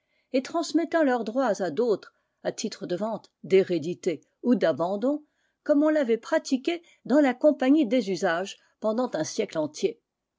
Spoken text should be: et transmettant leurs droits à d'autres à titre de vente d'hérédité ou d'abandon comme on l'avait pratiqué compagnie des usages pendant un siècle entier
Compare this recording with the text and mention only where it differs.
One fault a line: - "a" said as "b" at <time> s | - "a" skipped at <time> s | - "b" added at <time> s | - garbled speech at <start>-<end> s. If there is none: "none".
- "dans la" added at 7.0 s